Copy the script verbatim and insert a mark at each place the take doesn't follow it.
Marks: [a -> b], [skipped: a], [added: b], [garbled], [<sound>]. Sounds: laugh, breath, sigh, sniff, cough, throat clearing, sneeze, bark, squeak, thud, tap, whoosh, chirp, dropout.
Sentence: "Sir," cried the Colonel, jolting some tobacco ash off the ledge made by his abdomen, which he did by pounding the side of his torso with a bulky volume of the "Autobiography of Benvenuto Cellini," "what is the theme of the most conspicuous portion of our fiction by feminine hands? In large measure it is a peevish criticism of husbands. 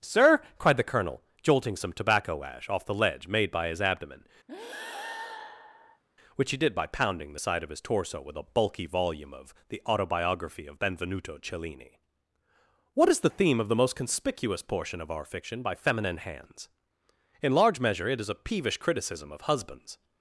"Sir," cried the Colonel, jolting some tobacco ash off the ledge made by his abdomen, [breath] which he did by pounding the side of his torso with a bulky volume of the "Autobiography of Benvenuto Cellini," "what is the theme of the most conspicuous portion of our fiction by feminine hands? In large measure it is a peevish criticism of husbands.